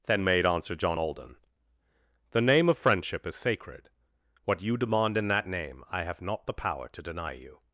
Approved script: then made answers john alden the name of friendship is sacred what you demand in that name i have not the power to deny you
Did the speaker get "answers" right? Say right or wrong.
wrong